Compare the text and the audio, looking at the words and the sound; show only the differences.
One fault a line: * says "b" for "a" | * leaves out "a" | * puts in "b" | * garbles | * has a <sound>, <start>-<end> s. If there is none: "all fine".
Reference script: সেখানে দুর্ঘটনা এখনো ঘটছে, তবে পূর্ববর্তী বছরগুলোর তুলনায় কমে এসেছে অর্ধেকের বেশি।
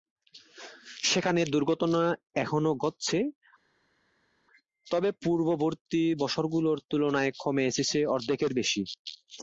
all fine